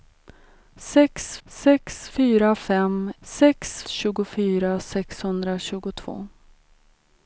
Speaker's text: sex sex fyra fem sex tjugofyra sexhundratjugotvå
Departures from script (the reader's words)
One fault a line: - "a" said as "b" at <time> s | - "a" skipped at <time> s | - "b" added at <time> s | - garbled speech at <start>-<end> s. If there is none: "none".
none